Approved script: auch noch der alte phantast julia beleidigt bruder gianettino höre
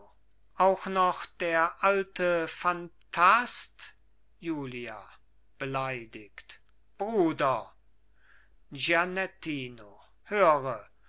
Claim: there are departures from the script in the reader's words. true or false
false